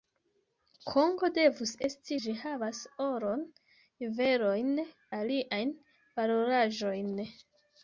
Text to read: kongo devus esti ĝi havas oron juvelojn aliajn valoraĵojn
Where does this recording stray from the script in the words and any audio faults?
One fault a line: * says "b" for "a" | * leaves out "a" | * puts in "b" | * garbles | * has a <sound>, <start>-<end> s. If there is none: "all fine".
all fine